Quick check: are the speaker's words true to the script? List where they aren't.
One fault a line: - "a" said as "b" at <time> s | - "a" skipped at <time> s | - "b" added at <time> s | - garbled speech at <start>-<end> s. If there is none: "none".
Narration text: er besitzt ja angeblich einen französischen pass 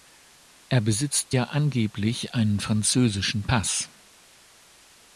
none